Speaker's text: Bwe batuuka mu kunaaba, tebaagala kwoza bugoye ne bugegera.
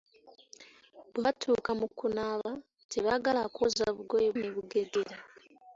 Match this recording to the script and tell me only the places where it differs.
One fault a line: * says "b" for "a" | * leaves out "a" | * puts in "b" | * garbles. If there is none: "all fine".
all fine